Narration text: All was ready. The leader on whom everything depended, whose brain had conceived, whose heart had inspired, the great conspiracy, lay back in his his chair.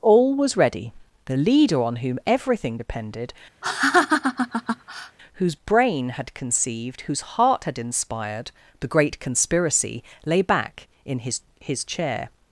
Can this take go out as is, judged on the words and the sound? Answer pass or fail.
fail